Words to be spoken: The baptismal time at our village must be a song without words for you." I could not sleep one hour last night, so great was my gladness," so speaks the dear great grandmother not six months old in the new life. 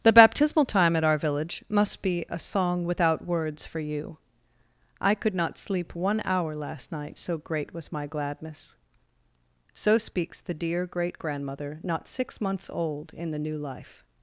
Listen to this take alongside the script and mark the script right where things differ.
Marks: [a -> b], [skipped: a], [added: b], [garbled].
The baptismal time at our village must be a song without words for you." I could not sleep one hour last night, so great was my gladness," so speaks the dear great grandmother not six months old in the new life.